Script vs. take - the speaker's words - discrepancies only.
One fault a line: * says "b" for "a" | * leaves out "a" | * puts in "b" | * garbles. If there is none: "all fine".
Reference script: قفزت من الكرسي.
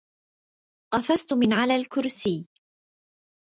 * puts in "على"